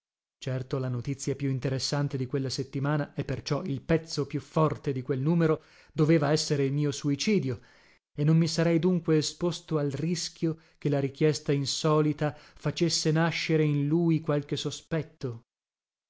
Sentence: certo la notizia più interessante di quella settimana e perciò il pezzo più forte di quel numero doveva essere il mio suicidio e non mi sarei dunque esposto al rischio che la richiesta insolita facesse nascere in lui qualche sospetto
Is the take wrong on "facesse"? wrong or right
right